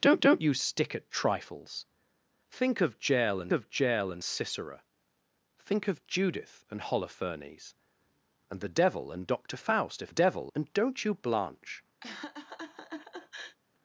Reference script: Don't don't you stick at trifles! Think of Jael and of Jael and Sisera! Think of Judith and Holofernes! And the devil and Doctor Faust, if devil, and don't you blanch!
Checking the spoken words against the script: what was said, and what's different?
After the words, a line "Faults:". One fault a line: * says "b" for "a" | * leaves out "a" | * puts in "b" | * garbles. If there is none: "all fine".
Don't don't you stick at trifles! Think of Jael and of Jael and Sisera! Think of Judith and Holofernes! And the devil and Doctor Faust, if devil, and don't you blanch!
Faults:
all fine